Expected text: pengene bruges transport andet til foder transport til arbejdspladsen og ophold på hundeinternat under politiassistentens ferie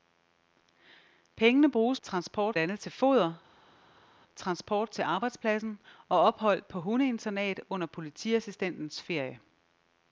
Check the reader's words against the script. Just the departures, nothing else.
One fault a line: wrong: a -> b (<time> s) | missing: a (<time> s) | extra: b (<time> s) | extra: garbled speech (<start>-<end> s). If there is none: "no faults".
no faults